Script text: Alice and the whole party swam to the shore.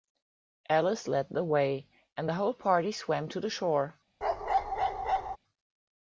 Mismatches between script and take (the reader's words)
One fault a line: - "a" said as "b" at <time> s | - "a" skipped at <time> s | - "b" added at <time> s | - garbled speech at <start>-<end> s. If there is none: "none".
- "led the way" added at 1.1 s